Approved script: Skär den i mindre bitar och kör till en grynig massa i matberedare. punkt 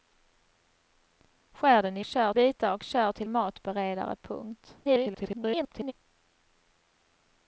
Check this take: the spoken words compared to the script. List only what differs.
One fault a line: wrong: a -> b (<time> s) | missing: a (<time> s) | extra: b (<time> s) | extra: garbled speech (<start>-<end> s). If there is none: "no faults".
wrong: mindre -> kör (2.0 s)
missing: en grynig massa (3.3 s)
extra: garbled speech (4.8-5.9 s)